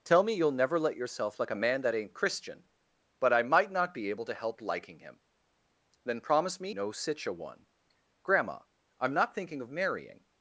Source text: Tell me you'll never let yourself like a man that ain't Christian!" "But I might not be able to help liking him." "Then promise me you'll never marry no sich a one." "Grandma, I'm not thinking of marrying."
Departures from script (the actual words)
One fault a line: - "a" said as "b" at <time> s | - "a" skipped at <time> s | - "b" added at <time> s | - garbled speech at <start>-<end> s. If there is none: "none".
- "you'll never marry" skipped at 6.7 s